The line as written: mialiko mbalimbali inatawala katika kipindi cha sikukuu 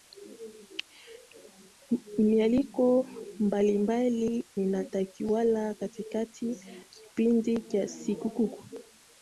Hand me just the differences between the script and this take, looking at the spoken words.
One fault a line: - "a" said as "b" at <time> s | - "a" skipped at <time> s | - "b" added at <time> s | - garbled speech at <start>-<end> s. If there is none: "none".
none